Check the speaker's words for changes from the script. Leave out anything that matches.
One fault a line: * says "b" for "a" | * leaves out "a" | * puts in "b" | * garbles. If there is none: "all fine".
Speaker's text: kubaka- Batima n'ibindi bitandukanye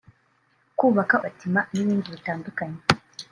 all fine